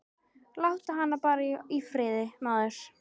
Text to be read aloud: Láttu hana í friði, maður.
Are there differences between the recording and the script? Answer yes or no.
yes